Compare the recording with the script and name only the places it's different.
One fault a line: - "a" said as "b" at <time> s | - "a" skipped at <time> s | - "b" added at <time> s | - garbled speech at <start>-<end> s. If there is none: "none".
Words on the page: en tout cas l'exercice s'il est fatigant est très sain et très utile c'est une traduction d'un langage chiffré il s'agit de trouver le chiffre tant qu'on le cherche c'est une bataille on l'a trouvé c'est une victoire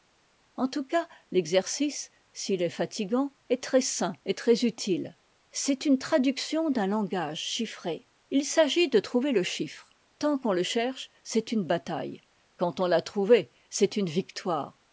- "quand" added at 12.6 s